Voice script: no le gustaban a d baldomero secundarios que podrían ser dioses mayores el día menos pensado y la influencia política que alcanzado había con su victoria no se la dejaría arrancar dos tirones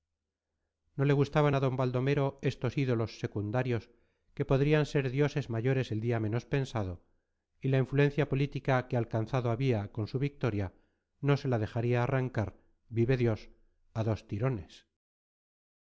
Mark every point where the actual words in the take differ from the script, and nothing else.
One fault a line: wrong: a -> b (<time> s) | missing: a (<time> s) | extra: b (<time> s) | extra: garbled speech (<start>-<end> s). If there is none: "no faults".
extra: estos ídolos (2.5 s)
extra: vive dios a (12.9 s)